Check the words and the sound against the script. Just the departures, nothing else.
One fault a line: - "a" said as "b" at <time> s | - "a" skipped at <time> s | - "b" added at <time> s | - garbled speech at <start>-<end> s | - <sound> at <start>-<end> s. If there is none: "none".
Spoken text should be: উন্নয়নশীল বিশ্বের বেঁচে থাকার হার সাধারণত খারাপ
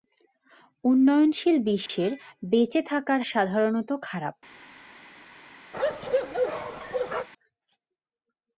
- dropout at 1.9-1.9 s
- "হার" skipped at 3.2 s
- bark at 5.7-7.3 s